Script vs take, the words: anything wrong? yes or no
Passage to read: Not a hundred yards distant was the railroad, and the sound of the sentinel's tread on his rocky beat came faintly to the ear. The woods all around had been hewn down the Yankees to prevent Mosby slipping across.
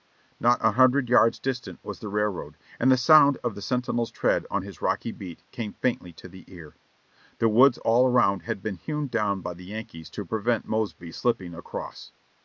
yes